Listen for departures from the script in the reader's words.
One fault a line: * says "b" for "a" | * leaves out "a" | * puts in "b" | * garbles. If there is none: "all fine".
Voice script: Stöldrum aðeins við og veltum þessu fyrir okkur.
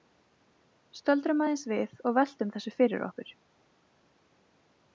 all fine